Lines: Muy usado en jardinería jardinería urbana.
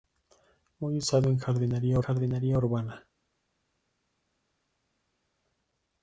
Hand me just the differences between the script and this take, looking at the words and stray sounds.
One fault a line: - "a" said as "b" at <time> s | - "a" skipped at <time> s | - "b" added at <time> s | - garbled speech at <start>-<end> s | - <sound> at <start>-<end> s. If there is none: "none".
none